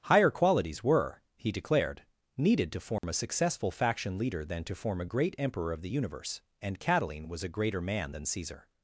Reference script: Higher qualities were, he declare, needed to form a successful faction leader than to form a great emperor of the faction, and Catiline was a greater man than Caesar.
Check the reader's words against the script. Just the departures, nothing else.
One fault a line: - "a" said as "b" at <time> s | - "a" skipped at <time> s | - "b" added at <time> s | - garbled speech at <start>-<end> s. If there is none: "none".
- "declare" said as "declared" at 1.5 s
- "faction" said as "universe" at 5.9 s